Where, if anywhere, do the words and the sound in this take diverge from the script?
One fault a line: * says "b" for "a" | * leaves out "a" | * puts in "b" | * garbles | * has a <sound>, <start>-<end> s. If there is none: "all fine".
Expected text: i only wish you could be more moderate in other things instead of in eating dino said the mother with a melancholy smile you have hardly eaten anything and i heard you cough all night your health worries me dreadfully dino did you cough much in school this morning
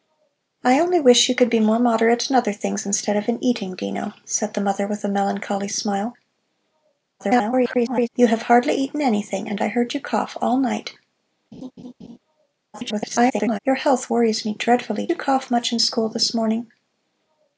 * garbles
* has a laugh, 11.5-12.2 s
* garbles
* leaves out "dino did"